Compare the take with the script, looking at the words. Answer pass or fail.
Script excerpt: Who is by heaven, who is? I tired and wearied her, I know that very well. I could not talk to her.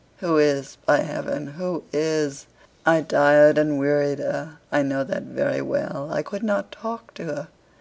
pass